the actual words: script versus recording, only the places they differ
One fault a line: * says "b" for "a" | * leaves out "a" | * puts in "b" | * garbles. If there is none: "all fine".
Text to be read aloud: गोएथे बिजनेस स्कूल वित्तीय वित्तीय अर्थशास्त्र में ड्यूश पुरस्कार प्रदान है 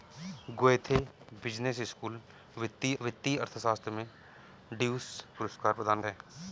all fine